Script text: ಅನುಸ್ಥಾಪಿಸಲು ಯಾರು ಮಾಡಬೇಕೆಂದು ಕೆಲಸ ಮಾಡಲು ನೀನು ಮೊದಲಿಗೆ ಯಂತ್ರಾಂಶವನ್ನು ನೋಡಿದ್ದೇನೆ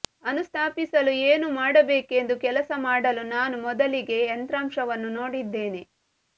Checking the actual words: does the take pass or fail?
fail